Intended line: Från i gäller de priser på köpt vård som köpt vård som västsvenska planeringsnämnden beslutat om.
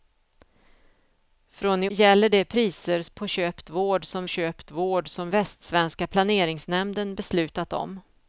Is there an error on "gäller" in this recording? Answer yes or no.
no